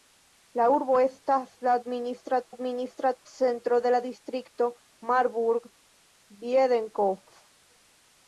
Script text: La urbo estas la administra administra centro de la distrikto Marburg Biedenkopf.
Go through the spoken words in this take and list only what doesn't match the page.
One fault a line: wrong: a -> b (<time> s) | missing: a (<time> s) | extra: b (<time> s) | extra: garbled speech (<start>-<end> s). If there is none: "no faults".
no faults